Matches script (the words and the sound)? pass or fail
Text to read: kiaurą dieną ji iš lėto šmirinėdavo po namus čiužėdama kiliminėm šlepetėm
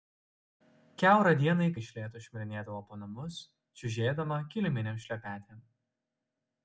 pass